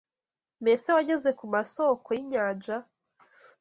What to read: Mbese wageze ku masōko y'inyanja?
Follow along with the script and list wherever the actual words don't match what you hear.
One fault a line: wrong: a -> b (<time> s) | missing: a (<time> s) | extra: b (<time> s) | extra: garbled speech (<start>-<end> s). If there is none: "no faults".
no faults